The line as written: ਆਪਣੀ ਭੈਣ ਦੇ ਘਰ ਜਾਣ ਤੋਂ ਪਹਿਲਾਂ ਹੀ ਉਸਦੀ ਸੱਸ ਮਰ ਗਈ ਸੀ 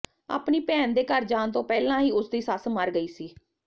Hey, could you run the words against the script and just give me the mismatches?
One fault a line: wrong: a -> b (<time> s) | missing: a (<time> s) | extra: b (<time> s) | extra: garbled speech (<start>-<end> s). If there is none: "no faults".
no faults